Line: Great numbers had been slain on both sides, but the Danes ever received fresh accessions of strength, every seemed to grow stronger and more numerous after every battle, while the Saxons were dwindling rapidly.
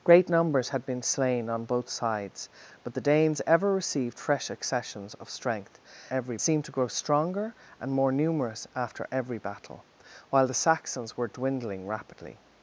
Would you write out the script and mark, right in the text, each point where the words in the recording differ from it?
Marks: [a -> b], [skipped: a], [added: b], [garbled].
Great numbers had been slain on both sides, but the Danes ever received fresh accessions of strength, every seemed to grow stronger and more numerous after every battle, while the Saxons were dwindling rapidly.